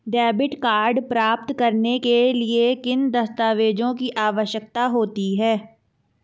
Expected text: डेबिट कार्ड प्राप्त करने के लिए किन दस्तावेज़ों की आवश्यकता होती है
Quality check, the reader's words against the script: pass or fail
pass